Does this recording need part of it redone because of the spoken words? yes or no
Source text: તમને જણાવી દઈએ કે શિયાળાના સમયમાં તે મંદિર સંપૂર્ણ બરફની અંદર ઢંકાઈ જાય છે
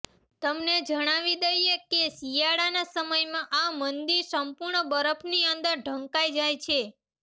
yes